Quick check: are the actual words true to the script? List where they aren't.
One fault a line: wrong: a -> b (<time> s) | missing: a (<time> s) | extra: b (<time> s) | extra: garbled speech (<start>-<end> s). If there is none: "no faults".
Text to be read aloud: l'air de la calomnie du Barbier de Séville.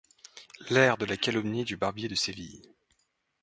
no faults